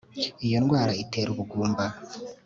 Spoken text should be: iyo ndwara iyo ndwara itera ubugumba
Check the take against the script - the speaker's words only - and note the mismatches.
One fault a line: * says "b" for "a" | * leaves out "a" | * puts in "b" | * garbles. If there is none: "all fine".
* leaves out "iyo ndwara"